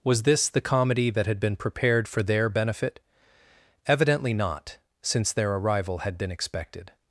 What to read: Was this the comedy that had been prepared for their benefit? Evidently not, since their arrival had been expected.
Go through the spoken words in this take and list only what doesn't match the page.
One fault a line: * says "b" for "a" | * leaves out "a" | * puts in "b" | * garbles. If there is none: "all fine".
all fine